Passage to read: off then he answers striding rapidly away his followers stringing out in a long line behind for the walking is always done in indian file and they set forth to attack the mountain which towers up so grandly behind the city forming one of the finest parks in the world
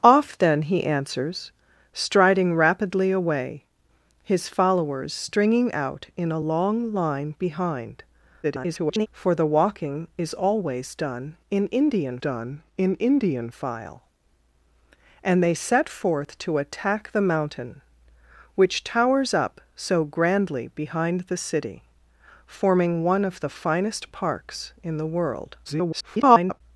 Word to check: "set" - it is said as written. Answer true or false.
true